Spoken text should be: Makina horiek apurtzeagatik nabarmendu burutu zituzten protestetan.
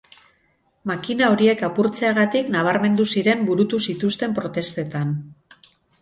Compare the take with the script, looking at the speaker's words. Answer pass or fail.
fail